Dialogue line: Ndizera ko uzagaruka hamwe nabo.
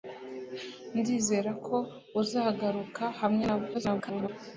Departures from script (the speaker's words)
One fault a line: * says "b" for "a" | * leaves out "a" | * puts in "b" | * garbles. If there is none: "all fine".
* garbles